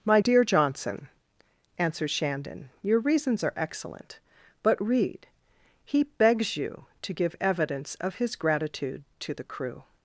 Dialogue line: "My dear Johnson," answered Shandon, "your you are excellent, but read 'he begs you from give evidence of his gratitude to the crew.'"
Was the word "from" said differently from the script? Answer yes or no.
yes